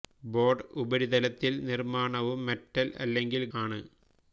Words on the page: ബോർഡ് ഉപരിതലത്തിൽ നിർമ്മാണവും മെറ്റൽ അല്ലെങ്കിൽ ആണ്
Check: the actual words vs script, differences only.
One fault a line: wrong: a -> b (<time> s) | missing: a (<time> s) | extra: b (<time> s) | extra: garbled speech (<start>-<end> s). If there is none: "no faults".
no faults